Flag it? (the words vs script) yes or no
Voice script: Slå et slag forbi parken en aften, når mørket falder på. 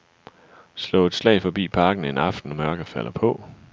no